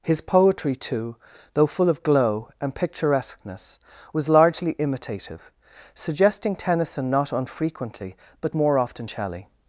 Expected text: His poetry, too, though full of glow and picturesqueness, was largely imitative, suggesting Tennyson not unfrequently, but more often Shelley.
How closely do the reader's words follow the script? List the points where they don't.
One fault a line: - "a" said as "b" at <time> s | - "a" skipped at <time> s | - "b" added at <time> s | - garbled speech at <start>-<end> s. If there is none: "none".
none